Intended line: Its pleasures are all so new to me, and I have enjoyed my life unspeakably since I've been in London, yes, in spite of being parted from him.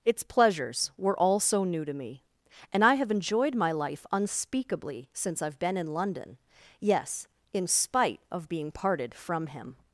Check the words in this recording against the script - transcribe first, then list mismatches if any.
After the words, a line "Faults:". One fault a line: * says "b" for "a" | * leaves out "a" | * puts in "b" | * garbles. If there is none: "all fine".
Its pleasures were all so new to me, and I have enjoyed my life unspeakably since I've been in London, yes, in spite of being parted from him.
Faults:
* says "were" for "are"